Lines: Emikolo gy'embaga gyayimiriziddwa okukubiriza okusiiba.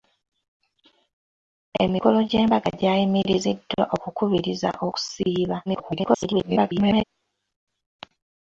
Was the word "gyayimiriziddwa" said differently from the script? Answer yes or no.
no